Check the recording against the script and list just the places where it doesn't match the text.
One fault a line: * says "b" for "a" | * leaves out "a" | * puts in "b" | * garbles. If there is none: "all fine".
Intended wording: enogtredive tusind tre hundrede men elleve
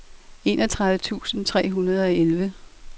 * says "og" for "men"